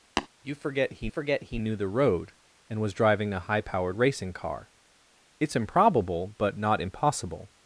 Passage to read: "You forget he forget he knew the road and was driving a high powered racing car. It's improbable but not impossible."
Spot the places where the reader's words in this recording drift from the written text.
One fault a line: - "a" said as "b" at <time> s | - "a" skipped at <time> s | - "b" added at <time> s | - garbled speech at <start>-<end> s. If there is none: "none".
none